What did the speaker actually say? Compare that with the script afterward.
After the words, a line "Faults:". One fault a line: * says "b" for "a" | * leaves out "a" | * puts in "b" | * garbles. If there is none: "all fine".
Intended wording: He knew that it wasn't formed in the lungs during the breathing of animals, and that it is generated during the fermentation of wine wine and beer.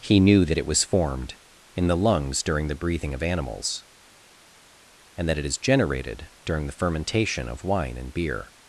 He knew that it was formed in the lungs during the breathing of animals, and that it is generated during the fermentation of wine and beer.
Faults:
* says "was" for "wasn't"
* leaves out "wine"